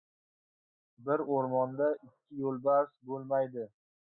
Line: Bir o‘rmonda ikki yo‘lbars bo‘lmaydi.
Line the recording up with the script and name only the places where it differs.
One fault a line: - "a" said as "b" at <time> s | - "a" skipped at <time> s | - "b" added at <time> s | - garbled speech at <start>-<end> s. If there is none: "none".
none